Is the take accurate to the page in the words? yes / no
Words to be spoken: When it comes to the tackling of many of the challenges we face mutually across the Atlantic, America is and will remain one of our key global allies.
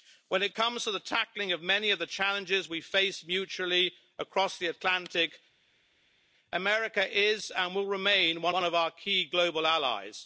no